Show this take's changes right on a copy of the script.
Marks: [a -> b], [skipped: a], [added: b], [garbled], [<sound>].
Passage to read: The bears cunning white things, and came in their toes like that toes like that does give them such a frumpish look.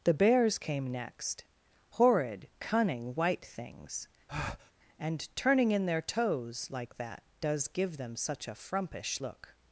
The bears [added: came next horrid] cunning white things, [breath] and [came -> turning] in their toes like that [skipped: toes like that] does give them such a frumpish look.